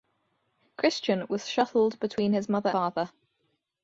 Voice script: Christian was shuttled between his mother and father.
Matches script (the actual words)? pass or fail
fail